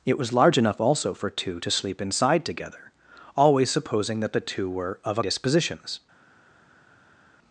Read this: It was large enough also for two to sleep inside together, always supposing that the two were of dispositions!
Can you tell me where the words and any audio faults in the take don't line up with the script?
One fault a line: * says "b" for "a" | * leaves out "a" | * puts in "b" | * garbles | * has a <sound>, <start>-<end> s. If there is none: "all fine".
all fine